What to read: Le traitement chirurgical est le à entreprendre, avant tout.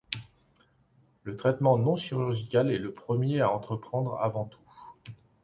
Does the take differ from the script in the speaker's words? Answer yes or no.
yes